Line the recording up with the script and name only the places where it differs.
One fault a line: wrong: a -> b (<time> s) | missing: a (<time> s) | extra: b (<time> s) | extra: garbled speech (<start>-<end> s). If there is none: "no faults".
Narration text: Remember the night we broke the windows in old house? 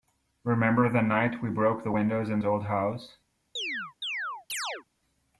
no faults